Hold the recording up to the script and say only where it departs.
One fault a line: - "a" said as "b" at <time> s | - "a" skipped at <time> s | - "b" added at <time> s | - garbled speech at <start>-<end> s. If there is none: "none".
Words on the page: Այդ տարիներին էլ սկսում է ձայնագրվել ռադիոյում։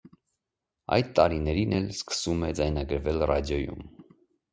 none